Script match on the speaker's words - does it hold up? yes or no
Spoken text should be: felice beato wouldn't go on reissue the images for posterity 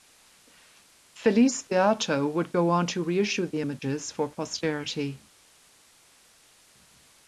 no